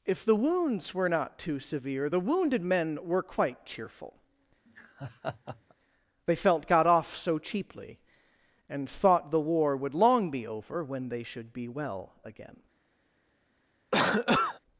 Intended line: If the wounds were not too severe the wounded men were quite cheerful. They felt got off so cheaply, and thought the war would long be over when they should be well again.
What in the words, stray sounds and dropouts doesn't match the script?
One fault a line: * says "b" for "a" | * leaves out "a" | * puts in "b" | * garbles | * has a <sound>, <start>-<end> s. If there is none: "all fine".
* has a laugh, 4.7-5.7 s
* has a cough, 13.9-14.6 s